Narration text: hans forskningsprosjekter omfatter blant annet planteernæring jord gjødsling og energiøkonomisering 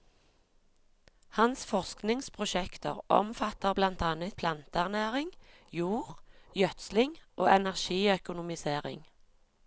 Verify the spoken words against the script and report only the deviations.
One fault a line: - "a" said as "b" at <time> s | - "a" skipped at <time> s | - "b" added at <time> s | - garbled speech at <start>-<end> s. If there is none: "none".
none